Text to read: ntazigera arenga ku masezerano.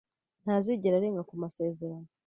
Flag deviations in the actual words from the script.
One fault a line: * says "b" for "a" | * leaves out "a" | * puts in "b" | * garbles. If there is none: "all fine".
all fine